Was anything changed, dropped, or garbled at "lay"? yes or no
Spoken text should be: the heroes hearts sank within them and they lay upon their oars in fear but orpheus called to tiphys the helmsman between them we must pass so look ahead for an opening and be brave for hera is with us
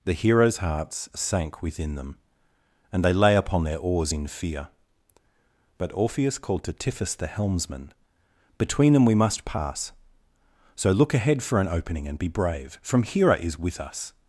no